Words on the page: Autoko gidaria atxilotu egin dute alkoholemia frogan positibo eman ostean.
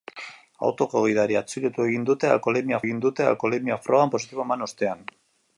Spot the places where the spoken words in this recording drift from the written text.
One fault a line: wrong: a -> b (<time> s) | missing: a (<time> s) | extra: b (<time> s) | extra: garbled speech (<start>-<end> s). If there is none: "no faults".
extra: egin dute alkoholemia (2.8 s)